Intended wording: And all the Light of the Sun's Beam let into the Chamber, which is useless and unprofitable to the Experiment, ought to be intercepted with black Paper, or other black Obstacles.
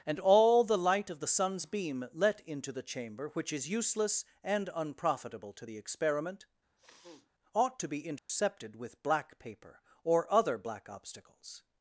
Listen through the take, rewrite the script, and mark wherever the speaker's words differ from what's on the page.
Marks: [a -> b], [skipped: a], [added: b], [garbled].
And all the Light of the Sun's Beam let into the Chamber, which is useless and unprofitable to the Experiment, ought to be intercepted with black Paper, or other black Obstacles.